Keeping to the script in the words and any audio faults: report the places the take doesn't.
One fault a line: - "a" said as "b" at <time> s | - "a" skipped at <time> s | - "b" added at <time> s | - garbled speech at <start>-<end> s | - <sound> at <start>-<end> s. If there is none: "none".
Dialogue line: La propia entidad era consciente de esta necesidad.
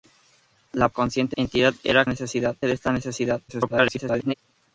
- "propia" said as "consciente" at 0.9 s
- "consciente" said as "necesidad" at 2.1 s
- garbled speech at 3.5-4.3 s